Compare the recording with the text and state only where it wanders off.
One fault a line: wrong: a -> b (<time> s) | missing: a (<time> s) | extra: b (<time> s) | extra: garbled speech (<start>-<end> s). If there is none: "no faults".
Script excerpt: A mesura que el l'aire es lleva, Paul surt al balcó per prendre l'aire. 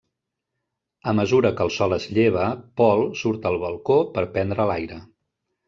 wrong: l'aire -> sol (1.8 s)